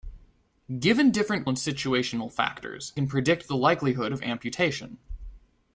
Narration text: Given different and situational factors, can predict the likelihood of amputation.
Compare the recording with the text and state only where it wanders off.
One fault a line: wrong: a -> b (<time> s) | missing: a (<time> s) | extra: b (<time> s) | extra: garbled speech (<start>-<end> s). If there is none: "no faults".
no faults